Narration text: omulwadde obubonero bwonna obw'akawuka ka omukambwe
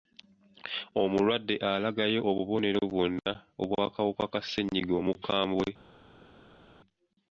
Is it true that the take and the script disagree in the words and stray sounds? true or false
true